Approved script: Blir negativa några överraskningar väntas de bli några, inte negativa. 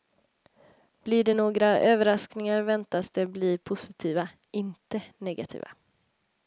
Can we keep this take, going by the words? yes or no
no